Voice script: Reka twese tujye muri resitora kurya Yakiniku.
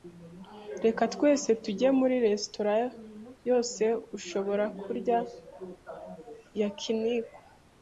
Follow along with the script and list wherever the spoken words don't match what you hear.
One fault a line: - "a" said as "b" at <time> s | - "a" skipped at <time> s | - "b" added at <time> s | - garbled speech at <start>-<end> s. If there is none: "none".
- "yose ushobora" added at 3.5 s